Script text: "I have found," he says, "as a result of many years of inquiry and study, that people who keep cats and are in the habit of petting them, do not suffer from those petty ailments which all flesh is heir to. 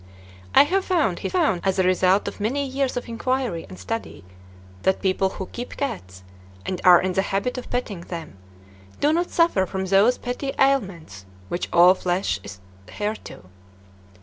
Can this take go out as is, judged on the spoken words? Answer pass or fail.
fail